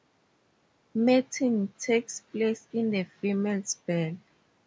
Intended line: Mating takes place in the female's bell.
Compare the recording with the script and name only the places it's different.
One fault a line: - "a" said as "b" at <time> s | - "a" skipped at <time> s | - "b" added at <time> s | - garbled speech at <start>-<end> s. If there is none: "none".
none